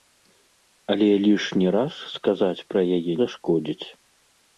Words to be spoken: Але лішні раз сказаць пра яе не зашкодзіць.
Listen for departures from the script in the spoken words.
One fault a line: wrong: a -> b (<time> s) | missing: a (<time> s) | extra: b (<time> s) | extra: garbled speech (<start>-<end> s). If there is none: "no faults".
missing: не (3.1 s)